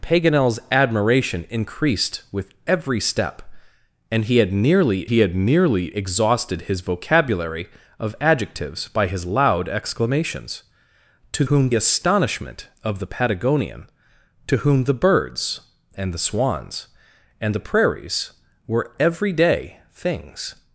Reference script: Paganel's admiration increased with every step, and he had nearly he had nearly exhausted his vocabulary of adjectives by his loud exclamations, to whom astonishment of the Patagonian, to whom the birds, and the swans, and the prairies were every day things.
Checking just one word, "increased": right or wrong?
right